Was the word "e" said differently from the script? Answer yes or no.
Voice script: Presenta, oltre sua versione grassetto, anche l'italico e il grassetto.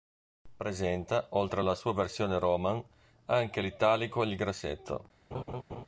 no